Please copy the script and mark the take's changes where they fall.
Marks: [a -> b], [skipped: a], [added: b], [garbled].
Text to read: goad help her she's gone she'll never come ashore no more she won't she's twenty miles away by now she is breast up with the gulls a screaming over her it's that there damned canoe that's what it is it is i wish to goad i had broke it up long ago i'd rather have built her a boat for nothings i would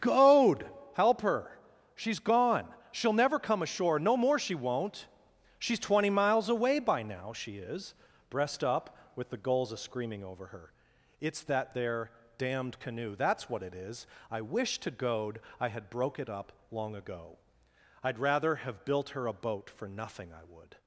goad help her she's gone she'll never come ashore no more she won't she's twenty miles away by now she is breast up with the gulls a screaming over her it's that there damned canoe that's what it is [skipped: it is] i wish to goad i had broke it up long ago i'd rather have built her a boat for [nothings -> nothing] i would